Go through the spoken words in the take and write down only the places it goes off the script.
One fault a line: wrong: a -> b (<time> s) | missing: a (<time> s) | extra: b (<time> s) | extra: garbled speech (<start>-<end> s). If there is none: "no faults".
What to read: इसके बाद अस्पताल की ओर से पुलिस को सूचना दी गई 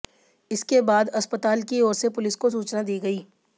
no faults